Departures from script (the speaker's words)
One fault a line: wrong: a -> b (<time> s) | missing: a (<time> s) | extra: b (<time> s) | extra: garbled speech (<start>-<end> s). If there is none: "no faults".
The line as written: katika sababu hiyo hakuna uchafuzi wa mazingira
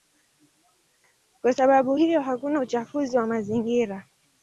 wrong: katika -> kwa (1.4 s)